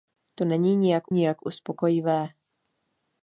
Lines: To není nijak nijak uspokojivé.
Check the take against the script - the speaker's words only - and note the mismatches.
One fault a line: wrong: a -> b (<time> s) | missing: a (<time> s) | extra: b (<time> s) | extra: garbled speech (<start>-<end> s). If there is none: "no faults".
no faults